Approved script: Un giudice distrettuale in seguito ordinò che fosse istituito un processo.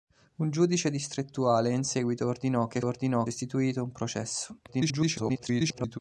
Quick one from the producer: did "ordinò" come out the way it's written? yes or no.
yes